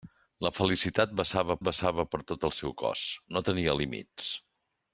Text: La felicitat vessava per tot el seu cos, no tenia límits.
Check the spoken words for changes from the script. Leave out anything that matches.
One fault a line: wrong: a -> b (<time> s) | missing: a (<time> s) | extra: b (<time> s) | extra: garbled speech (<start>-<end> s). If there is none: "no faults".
extra: vessava (1.7 s)